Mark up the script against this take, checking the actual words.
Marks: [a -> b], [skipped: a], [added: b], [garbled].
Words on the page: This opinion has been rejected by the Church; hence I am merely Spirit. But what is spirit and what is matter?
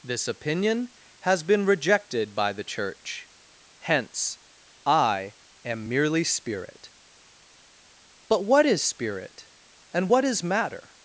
This opinion has been rejected by the Church; hence I am merely Spirit. But what is spirit and what is matter?